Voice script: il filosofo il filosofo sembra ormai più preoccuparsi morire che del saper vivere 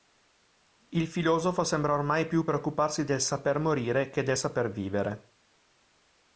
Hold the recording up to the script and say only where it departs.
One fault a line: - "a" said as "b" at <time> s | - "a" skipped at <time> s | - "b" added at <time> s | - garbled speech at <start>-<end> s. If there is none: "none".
- "il filosofo" skipped at 1.6 s
- "del saper" added at 3.0 s